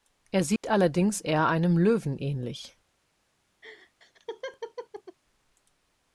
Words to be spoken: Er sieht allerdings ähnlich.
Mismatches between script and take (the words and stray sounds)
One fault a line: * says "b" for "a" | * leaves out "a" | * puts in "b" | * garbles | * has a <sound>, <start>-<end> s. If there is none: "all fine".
* has a dropout, 0.6-0.6 s
* puts in "eher einem Löwen"
* has a laugh, 3.6-5.2 s